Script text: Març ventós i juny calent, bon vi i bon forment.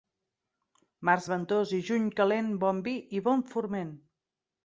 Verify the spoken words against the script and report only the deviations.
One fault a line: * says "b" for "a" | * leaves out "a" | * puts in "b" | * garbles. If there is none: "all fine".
all fine